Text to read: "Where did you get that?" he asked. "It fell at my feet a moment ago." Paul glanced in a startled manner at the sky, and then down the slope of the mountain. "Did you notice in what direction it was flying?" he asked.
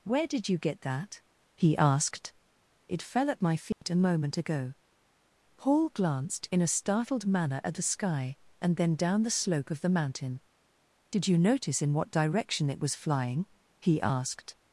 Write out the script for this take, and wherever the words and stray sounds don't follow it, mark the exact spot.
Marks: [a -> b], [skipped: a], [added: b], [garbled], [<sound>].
"Where did you get that?" he asked. "It fell at my feet [dropout] a moment ago." Paul glanced in a startled manner at the sky, and then down the slope of the mountain. "Did you notice in what direction it was flying?" he asked.